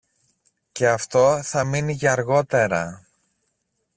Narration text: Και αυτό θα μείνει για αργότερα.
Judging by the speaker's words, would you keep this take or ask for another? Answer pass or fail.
pass